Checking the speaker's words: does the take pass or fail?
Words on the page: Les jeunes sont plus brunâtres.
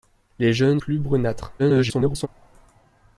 fail